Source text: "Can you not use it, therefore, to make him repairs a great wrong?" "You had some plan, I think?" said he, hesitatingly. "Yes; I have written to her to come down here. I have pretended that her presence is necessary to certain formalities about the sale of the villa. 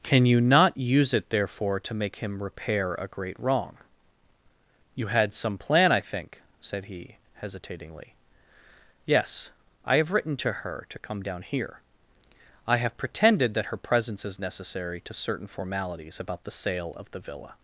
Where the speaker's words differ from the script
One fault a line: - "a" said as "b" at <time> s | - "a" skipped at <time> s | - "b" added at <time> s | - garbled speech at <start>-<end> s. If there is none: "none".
- "repairs" said as "repair" at 2.4 s